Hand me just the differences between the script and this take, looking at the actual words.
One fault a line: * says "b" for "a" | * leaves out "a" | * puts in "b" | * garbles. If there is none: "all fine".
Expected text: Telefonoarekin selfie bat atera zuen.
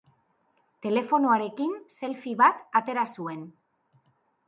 all fine